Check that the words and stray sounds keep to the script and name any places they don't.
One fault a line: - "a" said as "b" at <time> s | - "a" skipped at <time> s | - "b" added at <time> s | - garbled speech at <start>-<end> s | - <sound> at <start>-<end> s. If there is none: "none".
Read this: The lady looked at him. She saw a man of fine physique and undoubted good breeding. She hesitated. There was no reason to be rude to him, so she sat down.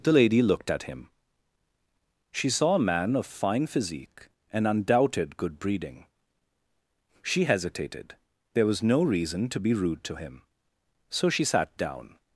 none